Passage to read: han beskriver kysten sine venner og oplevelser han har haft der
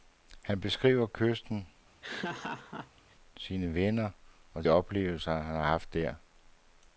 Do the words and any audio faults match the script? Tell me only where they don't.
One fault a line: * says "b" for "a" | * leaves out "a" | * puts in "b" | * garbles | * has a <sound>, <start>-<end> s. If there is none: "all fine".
* has a laugh, 2.0-3.2 s